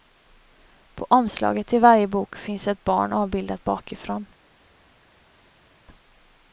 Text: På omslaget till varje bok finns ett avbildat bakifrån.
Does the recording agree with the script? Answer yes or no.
no